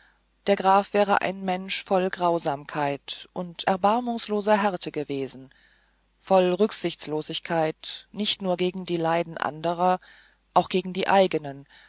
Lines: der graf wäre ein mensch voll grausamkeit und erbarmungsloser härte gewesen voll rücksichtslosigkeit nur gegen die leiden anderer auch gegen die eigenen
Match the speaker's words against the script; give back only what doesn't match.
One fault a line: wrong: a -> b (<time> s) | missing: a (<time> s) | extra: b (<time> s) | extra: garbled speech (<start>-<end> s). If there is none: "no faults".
extra: nicht (8.1 s)